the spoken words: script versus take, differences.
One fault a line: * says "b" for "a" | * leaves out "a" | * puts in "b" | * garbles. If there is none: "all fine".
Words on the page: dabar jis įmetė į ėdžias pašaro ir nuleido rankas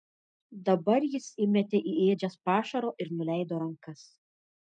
all fine